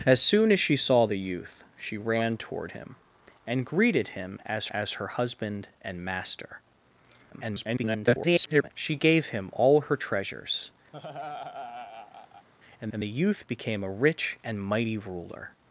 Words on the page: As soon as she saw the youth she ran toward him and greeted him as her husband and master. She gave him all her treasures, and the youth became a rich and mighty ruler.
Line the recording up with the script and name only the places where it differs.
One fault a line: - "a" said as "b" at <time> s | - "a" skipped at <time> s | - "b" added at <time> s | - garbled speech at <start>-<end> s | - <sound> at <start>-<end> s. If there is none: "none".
- "as" added at 4.7 s
- garbled speech at 7.3-8.7 s
- laugh at 10.9-12.5 s
- "and" added at 12.9 s